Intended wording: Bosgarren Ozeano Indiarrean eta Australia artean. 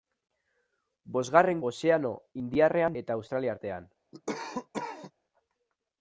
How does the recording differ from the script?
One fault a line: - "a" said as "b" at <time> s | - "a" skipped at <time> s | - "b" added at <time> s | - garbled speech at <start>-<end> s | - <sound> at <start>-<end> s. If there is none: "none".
- cough at 4.1-5.1 s